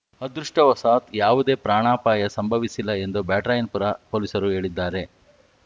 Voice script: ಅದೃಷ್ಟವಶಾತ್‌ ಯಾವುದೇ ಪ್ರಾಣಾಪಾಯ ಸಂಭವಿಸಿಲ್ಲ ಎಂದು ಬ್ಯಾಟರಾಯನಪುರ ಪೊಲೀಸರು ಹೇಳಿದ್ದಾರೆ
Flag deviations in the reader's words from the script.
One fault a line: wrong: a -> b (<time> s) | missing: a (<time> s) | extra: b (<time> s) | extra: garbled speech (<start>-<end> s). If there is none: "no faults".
no faults